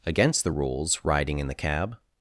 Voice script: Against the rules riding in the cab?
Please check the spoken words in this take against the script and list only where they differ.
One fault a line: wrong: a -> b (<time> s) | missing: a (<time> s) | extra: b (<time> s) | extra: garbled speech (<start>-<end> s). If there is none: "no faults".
no faults